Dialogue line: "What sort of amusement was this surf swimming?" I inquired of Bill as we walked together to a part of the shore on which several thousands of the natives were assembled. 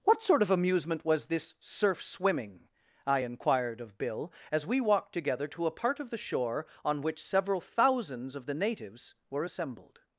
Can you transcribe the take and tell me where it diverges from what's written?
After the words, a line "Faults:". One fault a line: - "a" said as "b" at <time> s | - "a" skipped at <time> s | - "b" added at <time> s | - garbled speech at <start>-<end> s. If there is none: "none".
"What sort of amusement was this surf swimming?" I inquired of Bill as we walked together to a part of the shore on which several thousands of the natives were assembled.
Faults:
none